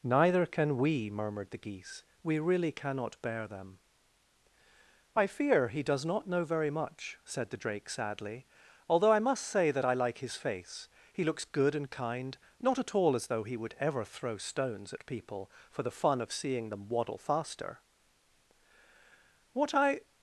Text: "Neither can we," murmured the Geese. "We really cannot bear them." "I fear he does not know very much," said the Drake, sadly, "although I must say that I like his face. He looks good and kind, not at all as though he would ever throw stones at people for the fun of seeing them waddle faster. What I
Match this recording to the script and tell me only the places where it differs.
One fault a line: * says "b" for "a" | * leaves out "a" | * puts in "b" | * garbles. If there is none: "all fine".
all fine